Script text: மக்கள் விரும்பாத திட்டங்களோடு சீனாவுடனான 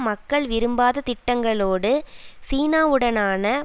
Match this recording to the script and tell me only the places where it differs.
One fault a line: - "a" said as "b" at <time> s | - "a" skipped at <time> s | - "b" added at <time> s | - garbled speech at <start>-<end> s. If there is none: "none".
none